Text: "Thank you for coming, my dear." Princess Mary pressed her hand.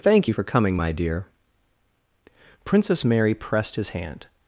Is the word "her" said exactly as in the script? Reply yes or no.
no